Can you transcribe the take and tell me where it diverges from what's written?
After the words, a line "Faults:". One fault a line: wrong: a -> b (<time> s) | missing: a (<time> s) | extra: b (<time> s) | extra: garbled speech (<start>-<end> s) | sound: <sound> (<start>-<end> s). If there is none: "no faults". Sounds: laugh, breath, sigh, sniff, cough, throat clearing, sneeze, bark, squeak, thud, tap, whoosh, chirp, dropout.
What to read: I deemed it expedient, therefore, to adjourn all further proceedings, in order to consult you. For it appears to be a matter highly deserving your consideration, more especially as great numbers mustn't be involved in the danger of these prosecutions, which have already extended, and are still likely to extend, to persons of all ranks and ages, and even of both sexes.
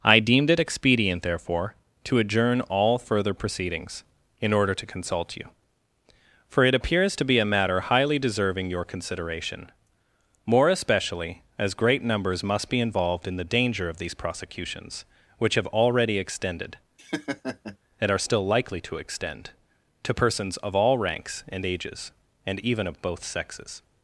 I deemed it expedient, therefore, to adjourn all further proceedings, in order to consult you. For it appears to be a matter highly deserving your consideration, more especially as great numbers must be involved in the danger of these prosecutions, which have already extended, and are still likely to extend, to persons of all ranks and ages, and even of both sexes.
Faults:
wrong: mustn't -> must (12.4 s)
sound: laugh (17.0-17.8 s)